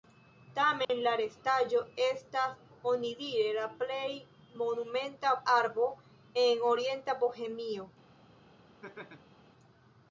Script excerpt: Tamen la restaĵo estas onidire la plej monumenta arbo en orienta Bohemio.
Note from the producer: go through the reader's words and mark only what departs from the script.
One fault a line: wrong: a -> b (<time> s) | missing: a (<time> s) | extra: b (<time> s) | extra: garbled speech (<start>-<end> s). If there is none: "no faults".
no faults